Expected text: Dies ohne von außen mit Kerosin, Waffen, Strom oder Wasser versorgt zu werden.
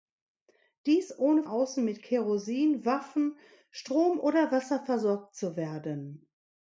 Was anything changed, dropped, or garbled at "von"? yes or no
yes